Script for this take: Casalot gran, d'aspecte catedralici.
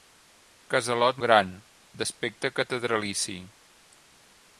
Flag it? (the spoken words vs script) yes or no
no